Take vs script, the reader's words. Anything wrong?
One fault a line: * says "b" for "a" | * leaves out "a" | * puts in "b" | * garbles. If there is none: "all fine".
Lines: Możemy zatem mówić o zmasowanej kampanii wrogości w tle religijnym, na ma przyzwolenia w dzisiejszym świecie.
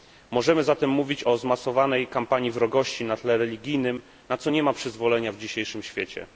* says "na" for "w"
* puts in "co nie"